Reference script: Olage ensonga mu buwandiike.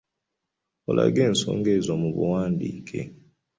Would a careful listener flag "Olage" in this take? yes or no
no